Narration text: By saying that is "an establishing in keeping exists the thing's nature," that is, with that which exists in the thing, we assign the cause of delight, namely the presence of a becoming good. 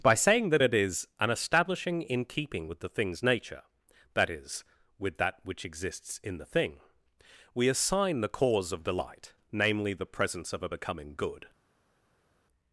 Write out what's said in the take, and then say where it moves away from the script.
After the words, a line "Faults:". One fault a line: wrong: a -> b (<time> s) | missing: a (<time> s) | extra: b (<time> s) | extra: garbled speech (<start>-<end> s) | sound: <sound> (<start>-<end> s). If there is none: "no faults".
By saying that it is "an establishing in keeping with the thing's nature," that is, with that which exists in the thing, we assign the cause of delight, namely the presence of a becoming good.
Faults:
extra: it (0.6 s)
wrong: exists -> with (2.7 s)